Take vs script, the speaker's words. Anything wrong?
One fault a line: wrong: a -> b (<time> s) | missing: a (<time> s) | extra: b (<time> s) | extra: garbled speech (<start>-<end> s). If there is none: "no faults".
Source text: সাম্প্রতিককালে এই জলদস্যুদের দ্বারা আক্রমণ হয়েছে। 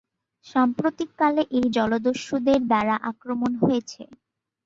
no faults